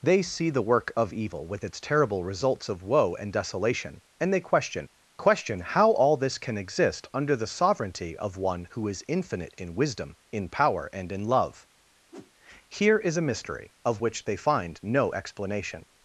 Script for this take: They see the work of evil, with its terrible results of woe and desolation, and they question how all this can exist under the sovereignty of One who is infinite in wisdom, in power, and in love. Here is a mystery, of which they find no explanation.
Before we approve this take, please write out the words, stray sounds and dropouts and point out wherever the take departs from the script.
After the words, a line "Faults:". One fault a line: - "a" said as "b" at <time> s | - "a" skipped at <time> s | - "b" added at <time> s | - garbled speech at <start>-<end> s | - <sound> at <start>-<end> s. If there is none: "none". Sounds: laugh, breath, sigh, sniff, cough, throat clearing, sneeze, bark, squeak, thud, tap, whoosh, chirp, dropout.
They see the work of evil, with its terrible results of woe and desolation, and they question question how all this can exist under the sovereignty of One who is infinite in wisdom, in power, and in love. Here is a mystery, of which they find no explanation.
Faults:
- "question" added at 5.2 s
- whoosh at 12.1-12.3 s